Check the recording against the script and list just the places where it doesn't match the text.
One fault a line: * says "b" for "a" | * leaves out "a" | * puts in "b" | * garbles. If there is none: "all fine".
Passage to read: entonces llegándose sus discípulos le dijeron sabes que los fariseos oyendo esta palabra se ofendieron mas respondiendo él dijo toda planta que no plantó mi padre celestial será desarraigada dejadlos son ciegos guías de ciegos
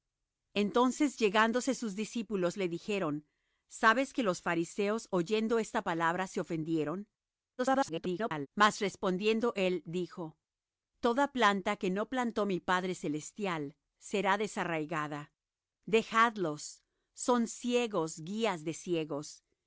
* garbles